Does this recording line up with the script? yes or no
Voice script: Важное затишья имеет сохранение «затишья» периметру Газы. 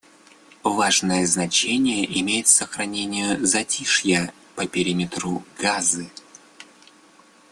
no